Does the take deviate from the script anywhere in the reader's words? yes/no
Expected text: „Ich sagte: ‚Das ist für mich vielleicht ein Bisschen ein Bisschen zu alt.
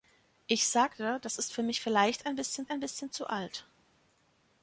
no